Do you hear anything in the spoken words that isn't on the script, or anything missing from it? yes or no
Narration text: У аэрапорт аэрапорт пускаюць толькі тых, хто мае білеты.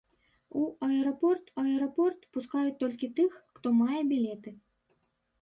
no